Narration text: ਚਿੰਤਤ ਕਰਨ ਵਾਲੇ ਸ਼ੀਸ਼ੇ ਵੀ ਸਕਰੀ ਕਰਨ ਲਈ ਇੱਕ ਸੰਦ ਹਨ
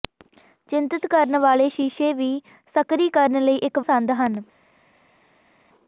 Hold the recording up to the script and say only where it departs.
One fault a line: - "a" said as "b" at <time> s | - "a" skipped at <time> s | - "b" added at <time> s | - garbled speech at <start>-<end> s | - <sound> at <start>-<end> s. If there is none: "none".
none